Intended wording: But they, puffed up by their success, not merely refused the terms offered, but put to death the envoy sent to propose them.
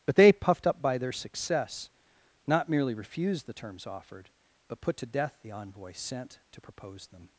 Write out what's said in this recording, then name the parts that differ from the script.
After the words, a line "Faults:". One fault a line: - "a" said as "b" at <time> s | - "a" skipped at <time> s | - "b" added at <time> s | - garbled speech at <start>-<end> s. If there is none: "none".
But they, puffed up by their success, not merely refused the terms offered, but put to death the envoy sent to propose them.
Faults:
none